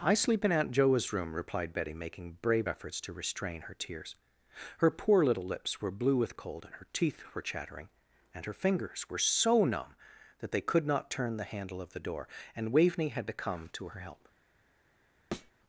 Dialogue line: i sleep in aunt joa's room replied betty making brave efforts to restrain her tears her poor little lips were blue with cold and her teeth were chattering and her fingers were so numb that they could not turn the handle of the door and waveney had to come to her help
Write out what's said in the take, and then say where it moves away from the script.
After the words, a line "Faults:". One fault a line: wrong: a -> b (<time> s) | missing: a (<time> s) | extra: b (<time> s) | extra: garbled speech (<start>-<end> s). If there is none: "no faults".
i sleep in aunt joa's room replied betty making brave efforts to restrain her tears her poor little lips were blue with cold and her teeth were chattering and her fingers were so numb that they could not turn the handle of the door and waveney had to come to her help
Faults:
no faults